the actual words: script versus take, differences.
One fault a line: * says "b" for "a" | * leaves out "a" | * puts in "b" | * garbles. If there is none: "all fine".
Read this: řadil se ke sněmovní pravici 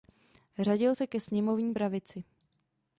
all fine